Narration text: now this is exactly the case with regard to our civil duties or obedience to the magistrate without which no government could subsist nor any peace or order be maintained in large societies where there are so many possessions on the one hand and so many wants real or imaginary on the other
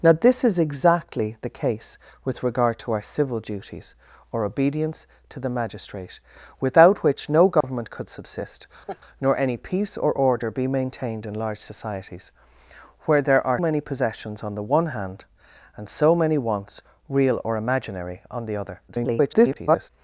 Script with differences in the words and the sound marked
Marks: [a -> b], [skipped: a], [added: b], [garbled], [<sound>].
now this is exactly the case with regard to our civil duties or obedience to the magistrate without which no government [dropout] could subsist [laugh] nor any peace or order be maintained in large societies where there are [skipped: so] many possessions on the one hand and so many wants real or imaginary on the other [garbled]